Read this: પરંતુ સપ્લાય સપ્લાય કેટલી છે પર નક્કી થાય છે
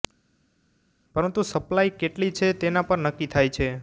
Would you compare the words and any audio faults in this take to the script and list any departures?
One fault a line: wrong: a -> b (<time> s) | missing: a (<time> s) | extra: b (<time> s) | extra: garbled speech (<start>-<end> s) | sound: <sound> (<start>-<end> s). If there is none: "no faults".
missing: સપ્લાય (2.0 s)
extra: તેના (2.6 s)